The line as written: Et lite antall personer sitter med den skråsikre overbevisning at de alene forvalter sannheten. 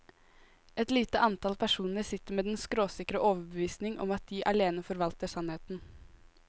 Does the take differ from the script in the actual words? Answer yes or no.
yes